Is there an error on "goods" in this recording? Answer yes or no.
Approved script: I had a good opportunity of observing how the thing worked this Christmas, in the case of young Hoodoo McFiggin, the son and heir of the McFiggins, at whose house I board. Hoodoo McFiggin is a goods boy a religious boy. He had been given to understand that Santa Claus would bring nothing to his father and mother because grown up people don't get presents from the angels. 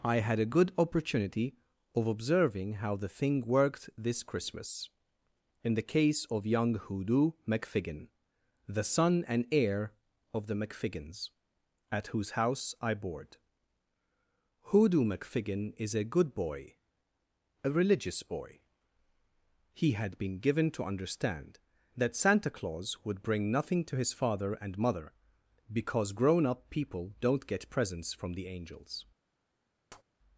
yes